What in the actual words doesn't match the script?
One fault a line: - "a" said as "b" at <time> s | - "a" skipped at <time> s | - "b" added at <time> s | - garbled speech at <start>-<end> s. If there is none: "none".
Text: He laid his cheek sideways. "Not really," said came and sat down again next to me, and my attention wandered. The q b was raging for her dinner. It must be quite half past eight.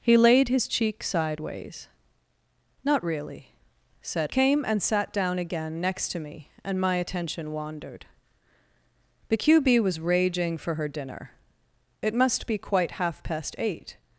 none